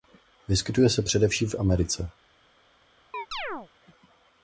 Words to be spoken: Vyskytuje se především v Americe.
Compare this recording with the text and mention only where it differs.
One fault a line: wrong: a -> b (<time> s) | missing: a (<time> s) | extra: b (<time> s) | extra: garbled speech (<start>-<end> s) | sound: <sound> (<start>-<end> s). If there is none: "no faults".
sound: chirp (3.1-3.7 s)